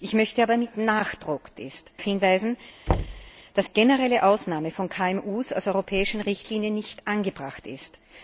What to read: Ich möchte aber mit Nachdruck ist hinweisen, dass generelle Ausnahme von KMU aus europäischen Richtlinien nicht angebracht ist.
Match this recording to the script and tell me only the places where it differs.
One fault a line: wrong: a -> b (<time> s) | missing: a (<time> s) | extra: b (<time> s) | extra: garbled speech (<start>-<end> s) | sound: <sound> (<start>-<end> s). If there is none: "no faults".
sound: thud (2.9-3.3 s)